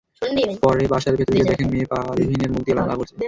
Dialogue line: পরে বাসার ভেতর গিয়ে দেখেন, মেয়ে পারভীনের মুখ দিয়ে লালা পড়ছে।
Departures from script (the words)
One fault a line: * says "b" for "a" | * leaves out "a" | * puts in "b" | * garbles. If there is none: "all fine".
all fine